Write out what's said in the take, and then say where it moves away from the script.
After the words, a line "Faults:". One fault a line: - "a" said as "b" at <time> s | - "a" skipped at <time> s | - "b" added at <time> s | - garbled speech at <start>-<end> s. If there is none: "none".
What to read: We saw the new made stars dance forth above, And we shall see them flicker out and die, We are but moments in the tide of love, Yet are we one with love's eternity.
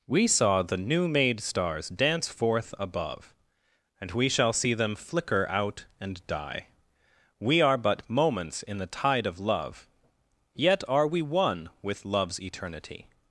We saw the new made stars dance forth above, And we shall see them flicker out and die, We are but moments in the tide of love, Yet are we one with love's eternity.
Faults:
none